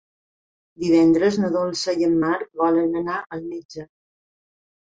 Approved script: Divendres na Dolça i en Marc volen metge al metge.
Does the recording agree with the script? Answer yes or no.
no